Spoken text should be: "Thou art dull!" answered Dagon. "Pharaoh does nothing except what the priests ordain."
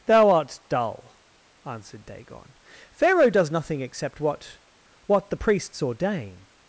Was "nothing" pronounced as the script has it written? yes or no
yes